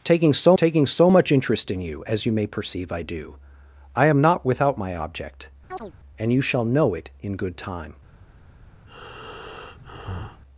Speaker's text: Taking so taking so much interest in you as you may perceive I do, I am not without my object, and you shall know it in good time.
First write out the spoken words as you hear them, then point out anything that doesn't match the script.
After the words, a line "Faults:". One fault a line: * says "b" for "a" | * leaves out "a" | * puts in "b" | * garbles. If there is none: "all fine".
Taking so taking so much interest in you as you may perceive I do, I am not without my object, and you shall know it in good time.
Faults:
all fine